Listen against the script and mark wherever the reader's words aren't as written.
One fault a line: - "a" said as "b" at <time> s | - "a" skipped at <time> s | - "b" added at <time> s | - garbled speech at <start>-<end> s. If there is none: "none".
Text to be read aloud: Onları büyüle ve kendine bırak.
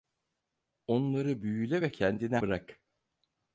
none